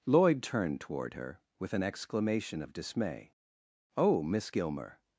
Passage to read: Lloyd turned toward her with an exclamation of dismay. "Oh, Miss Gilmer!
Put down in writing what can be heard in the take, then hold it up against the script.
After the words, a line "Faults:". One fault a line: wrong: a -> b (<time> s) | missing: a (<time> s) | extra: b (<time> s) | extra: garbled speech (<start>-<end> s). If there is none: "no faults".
Lloyd turned toward her with an exclamation of dismay. "Oh, Miss Gilmer!
Faults:
no faults